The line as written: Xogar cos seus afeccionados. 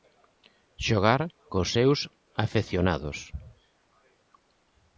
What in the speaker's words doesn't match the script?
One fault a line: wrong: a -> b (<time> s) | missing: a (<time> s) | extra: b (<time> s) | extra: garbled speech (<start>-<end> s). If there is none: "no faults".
no faults